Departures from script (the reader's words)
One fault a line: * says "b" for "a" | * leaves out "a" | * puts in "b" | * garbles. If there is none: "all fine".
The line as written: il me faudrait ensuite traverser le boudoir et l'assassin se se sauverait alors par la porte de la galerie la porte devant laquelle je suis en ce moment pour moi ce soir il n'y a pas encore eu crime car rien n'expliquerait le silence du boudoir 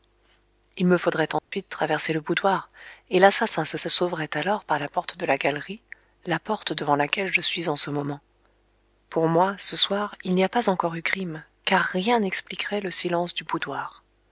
all fine